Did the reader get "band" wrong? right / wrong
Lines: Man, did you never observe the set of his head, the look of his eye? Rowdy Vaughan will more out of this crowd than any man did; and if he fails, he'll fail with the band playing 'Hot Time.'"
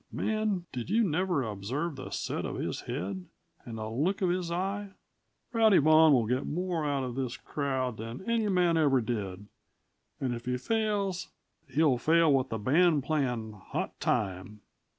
right